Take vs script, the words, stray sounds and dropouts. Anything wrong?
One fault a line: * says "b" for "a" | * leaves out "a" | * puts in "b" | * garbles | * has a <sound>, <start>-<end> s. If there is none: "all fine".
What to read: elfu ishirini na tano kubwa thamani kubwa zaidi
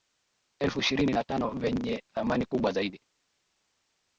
* says "vyenye" for "kubwa"